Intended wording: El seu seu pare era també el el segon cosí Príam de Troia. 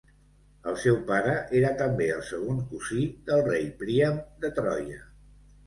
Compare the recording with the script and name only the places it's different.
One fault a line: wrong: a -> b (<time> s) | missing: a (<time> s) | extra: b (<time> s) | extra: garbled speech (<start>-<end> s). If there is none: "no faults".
missing: seu (0.9 s)
missing: el (2.2 s)
extra: del rei (3.3 s)